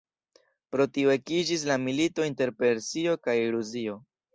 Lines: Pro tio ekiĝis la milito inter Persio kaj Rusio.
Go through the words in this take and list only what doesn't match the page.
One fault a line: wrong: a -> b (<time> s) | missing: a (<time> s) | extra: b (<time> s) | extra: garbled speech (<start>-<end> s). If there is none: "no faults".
no faults